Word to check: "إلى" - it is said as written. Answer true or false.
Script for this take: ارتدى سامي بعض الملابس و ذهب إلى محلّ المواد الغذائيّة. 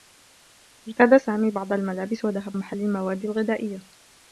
false